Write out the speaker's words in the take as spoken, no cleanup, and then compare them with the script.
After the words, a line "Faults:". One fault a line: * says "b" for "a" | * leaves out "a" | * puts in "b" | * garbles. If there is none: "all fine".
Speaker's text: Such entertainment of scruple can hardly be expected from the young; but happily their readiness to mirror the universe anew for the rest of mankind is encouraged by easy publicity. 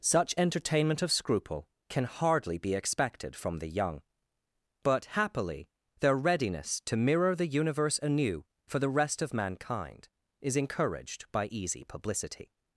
Such entertainment of scruple can hardly be expected from the young; but happily their readiness to mirror the universe anew for the rest of mankind is encouraged by easy publicity.
Faults:
all fine